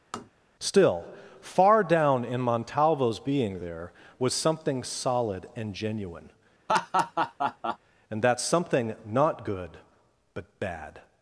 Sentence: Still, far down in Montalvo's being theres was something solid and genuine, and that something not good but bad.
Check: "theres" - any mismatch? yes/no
yes